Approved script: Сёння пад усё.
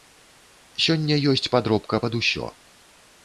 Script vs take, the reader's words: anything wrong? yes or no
yes